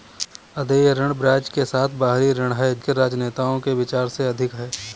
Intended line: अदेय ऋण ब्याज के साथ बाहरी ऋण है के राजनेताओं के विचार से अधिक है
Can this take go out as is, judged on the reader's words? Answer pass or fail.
pass